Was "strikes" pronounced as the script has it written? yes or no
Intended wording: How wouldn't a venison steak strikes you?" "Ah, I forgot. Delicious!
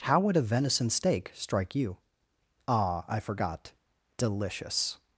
no